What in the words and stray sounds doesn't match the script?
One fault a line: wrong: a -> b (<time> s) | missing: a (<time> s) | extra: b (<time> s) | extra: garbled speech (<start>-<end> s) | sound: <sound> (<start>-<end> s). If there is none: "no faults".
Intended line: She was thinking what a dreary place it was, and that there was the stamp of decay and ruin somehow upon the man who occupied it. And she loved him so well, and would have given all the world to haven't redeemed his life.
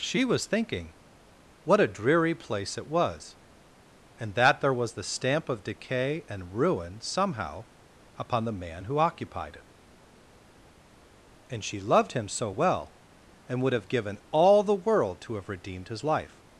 wrong: haven't -> have (15.4 s)